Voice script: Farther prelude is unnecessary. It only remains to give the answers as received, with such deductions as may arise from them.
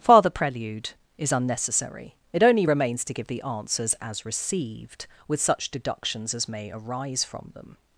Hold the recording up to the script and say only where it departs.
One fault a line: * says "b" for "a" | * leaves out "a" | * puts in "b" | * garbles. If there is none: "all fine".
all fine